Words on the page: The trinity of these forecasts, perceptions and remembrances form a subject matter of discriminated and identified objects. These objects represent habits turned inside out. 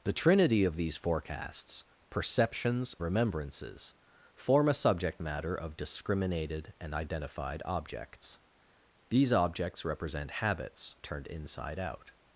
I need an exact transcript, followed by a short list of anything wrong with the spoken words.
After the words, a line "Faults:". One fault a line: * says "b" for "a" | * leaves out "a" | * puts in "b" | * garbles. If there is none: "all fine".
The trinity of these forecasts, perceptions remembrances form a subject matter of discriminated and identified objects. These objects represent habits turned inside out.
Faults:
* leaves out "and"